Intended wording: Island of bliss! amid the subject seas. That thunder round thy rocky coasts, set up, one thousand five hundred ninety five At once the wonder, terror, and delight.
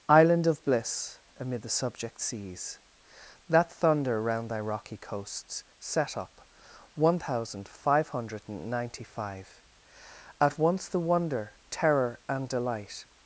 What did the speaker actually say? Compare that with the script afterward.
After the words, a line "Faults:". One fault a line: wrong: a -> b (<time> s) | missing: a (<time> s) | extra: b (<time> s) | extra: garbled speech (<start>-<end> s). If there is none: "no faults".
Island of bliss! amid the subject seas. That thunder round thy rocky coasts, set up, one thousand five hundred ninety five At once the wonder, terror, and delight.
Faults:
no faults